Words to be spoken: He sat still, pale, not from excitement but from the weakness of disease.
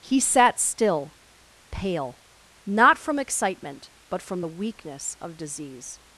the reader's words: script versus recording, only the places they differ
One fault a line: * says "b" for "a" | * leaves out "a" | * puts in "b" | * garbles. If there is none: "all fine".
all fine